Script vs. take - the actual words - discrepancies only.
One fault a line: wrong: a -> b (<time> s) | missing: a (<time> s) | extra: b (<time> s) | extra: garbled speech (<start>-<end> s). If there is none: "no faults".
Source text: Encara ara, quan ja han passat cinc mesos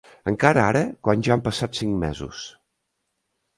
no faults